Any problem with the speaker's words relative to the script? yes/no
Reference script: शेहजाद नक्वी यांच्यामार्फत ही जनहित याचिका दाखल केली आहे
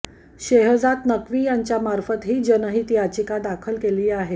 no